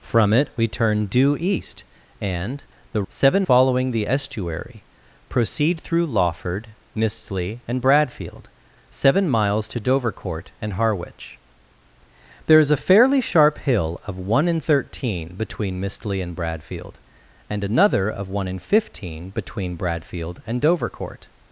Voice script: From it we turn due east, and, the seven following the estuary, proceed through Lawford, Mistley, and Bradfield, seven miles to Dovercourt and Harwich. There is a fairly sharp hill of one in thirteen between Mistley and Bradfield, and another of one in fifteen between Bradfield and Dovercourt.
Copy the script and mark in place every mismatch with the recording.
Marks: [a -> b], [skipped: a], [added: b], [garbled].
From it we turn due east, and, the seven following the estuary, proceed through Lawford, Mistley, and Bradfield, seven miles to Dovercourt and Harwich. There is a fairly sharp hill of one in thirteen between Mistley and Bradfield, and another of one in fifteen between Bradfield and Dovercourt.